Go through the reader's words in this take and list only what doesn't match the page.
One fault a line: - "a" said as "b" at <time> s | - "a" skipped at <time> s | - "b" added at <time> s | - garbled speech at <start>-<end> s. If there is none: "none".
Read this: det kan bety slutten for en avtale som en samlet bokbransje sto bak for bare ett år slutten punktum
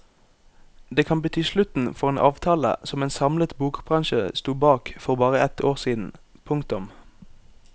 - "slutten" said as "siden" at 5.8 s